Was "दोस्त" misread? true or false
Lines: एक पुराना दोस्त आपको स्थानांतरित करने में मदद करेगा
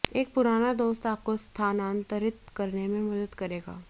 false